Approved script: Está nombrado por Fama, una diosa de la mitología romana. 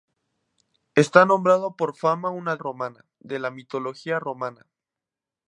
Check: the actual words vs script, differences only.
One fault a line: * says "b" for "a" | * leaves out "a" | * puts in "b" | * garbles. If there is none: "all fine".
* says "romana" for "diosa"